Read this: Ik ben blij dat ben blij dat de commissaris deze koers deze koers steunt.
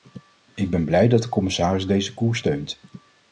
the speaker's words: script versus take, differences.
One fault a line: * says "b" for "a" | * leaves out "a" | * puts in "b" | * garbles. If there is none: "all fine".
* leaves out "ben blij dat"
* leaves out "deze koers"